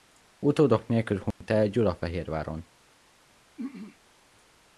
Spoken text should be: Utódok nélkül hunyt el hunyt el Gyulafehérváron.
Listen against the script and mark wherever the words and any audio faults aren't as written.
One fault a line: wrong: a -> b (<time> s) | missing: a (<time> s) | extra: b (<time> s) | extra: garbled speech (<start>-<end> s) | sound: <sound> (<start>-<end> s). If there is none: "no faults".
sound: dropout (1.3-1.4 s)
missing: hunyt el (1.7 s)
sound: throat clearing (3.6-4.0 s)